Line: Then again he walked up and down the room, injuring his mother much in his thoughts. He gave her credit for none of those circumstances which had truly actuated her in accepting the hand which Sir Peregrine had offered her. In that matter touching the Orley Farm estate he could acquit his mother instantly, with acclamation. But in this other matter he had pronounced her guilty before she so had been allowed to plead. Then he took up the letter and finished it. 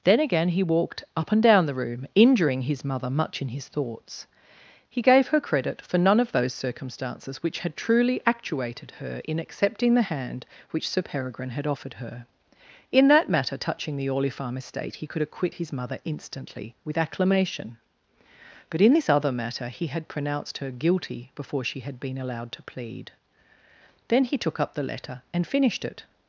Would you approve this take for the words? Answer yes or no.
no